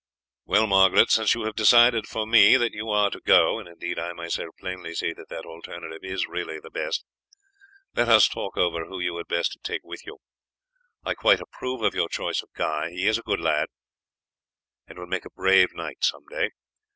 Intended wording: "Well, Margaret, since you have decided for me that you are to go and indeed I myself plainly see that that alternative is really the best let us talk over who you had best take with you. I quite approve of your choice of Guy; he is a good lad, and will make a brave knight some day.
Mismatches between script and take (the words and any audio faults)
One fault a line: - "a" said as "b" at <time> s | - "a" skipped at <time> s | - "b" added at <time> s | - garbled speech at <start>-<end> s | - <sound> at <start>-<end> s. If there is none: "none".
none